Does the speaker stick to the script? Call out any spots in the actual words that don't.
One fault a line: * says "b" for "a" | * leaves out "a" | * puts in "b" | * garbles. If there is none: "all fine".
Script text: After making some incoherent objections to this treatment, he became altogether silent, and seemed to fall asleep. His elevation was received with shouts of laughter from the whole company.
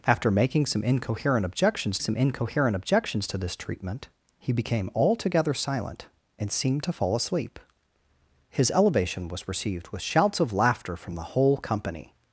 * puts in "some incoherent objections"